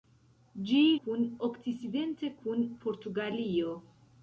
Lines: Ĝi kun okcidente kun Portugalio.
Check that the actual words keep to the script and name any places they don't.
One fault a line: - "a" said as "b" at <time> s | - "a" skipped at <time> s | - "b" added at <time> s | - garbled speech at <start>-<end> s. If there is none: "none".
none